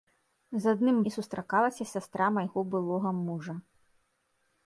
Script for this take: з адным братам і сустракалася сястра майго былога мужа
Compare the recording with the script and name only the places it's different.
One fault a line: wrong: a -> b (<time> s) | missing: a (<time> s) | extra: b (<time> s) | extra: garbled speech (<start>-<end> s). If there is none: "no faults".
missing: братам (1.0 s)